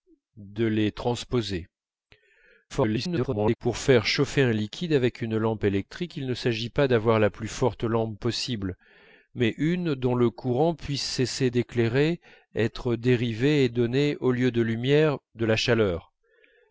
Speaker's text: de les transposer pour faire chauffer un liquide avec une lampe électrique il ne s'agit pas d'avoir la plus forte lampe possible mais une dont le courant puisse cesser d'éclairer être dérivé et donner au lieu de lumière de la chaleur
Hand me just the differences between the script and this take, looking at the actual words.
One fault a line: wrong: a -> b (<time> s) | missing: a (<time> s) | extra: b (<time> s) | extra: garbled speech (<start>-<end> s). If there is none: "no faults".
extra: garbled speech (2.7-3.6 s)